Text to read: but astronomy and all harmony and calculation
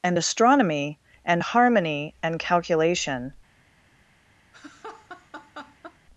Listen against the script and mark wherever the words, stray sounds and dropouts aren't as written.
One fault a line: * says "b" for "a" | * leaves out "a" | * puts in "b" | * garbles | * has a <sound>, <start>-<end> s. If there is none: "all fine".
* says "and" for "but"
* leaves out "all"
* has a laugh, 4.5-6.0 s